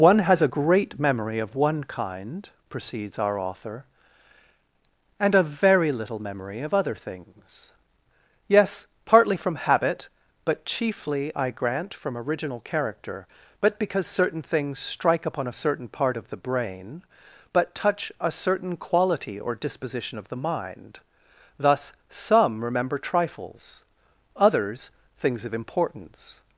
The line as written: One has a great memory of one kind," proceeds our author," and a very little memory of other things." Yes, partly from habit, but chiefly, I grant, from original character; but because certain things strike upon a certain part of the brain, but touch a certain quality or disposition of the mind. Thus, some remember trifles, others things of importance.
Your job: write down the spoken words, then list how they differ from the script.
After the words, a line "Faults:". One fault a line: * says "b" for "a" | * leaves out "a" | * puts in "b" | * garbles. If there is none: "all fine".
One has a great memory of one kind," proceeds our author," and a very little memory of other things." Yes, partly from habit, but chiefly, I grant, from original character; but because certain things strike upon a certain part of the brain, but touch a certain quality or disposition of the mind. Thus, some remember trifles, others things of importance.
Faults:
all fine